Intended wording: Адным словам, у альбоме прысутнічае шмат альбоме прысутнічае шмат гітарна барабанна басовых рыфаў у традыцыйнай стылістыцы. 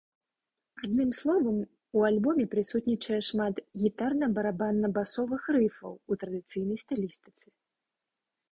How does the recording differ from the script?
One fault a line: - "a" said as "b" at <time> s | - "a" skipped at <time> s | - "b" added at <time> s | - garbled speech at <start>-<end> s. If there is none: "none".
- "альбоме прысутнічае шмат" skipped at 3.6 s